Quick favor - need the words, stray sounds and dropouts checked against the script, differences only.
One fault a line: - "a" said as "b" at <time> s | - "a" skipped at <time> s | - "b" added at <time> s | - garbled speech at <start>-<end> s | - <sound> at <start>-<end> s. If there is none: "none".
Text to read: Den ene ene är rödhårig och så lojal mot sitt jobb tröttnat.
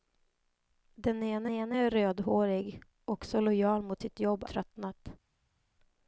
none